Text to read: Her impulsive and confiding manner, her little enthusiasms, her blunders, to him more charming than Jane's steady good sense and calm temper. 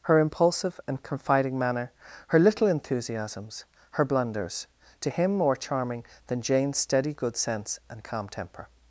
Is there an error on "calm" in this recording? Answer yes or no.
no